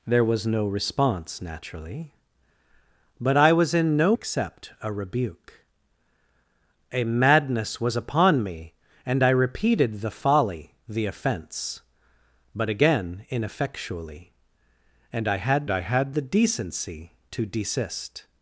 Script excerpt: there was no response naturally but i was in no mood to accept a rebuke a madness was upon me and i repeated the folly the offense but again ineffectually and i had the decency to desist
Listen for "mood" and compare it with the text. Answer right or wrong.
wrong